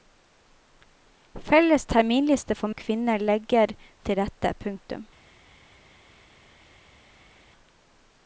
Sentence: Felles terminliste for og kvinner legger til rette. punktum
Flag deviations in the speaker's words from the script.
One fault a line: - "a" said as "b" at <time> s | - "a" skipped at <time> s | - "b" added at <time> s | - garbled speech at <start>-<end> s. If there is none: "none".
none